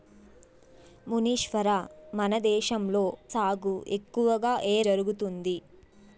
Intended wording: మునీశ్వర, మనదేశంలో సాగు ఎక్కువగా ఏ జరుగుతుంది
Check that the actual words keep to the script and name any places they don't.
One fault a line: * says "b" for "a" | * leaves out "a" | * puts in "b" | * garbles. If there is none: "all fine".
all fine